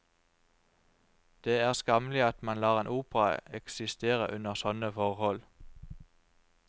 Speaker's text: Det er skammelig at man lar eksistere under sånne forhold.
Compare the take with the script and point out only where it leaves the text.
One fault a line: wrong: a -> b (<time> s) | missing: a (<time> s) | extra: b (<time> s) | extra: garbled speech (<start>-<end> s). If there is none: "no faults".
extra: en opera (2.8 s)